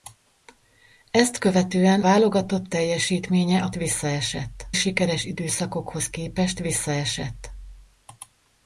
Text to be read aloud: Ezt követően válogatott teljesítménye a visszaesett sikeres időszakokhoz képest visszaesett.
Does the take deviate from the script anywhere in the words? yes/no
no